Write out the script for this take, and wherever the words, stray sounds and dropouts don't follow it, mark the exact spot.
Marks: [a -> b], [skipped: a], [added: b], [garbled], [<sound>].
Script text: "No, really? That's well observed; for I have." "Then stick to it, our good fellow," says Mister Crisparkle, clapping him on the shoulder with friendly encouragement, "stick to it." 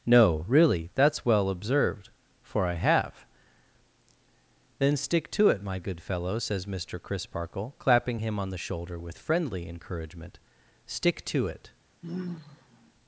"No, really? That's well observed; for I have." "Then stick to it, [our -> my] good fellow," says Mister Crisparkle, clapping him on the shoulder with friendly encouragement, "stick to it." [sigh]